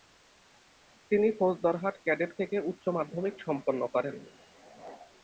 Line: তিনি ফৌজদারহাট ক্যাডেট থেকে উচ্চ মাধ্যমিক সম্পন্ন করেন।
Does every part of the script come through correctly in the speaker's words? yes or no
yes